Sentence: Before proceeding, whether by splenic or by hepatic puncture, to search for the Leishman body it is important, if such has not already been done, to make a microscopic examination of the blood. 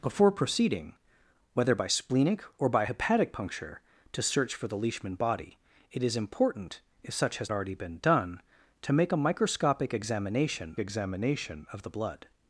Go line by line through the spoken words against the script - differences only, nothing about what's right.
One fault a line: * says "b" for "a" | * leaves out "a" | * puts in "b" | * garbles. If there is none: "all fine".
* leaves out "not"
* puts in "examination"